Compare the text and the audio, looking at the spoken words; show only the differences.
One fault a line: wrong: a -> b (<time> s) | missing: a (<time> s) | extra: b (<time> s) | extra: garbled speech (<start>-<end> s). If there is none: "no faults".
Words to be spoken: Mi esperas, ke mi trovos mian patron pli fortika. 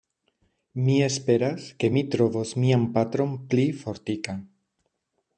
no faults